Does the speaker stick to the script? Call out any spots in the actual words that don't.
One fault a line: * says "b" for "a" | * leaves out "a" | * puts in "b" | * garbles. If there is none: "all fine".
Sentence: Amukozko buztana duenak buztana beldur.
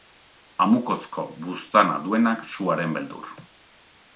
* says "suaren" for "buztana"